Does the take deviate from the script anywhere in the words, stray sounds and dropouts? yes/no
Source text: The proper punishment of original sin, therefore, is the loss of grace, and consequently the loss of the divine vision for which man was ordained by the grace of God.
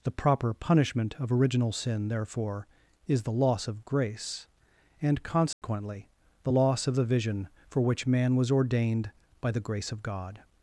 yes